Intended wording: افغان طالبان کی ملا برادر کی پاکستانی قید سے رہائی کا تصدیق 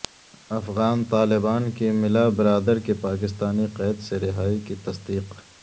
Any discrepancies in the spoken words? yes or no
yes